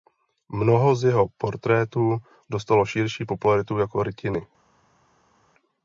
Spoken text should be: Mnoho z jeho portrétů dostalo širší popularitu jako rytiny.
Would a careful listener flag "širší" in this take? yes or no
no